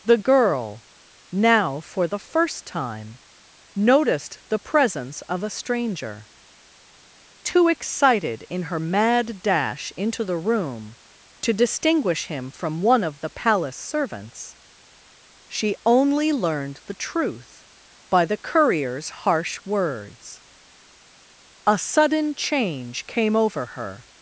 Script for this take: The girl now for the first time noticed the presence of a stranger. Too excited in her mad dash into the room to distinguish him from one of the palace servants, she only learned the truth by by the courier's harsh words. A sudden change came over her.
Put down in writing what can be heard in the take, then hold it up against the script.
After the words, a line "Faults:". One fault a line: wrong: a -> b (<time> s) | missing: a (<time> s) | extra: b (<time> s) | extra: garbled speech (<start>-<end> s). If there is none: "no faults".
The girl now for the first time noticed the presence of a stranger. Too excited in her mad dash into the room to distinguish him from one of the palace servants, she only learned the truth by the courier's harsh words. A sudden change came over her.
Faults:
missing: by (18.2 s)